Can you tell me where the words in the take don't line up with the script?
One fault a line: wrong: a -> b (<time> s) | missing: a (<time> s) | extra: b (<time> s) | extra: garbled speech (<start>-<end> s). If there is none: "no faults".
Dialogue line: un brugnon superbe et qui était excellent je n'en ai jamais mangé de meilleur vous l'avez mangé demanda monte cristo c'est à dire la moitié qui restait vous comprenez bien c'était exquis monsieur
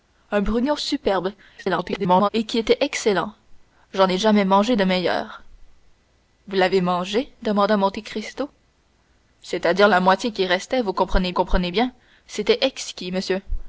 extra: garbled speech (1.6-2.3 s)
extra: comprenez (11.3 s)